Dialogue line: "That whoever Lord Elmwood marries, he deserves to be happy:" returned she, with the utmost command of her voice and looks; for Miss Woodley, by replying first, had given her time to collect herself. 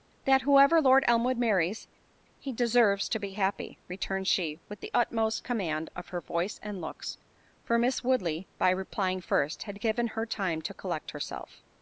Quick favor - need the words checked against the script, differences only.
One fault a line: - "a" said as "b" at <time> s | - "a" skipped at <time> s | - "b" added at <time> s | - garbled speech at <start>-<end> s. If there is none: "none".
none